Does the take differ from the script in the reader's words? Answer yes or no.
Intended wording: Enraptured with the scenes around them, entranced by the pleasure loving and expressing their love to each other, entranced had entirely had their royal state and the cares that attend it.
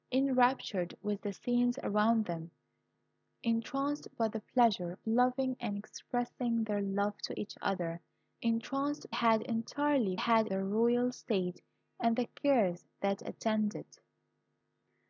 no